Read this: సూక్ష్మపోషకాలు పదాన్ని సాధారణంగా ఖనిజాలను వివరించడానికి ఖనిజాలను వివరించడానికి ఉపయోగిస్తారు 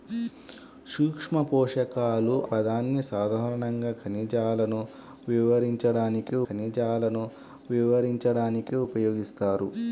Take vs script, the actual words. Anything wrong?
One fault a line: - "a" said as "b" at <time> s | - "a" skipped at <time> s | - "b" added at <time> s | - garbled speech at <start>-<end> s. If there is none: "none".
none